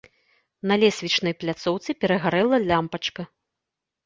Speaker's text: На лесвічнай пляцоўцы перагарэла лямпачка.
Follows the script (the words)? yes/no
yes